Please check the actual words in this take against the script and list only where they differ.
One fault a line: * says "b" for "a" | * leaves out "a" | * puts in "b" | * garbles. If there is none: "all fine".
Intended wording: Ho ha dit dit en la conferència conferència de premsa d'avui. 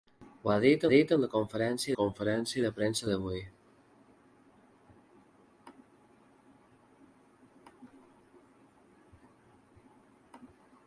all fine